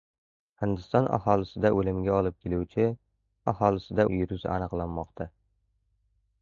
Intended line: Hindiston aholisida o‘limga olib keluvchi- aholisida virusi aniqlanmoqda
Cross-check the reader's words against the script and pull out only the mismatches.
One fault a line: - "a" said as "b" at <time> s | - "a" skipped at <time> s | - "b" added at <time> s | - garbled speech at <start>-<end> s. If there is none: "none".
none